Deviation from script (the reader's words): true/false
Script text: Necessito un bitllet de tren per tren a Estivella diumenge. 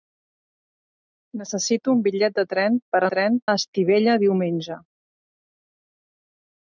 false